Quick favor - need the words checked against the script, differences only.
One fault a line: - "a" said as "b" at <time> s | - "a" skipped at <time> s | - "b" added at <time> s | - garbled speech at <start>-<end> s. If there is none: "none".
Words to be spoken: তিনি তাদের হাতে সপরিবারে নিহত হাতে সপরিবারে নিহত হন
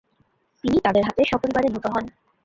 - "হাতে সপরিবারে নিহত" skipped at 1.9 s